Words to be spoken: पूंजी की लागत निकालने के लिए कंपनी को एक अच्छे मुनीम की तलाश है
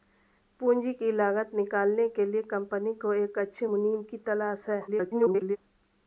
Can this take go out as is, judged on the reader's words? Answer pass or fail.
fail